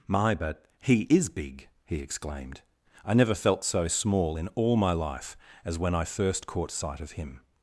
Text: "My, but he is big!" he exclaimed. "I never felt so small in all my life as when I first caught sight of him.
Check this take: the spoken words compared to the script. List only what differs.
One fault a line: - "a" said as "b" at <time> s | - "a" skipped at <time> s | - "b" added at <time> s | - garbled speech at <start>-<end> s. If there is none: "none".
none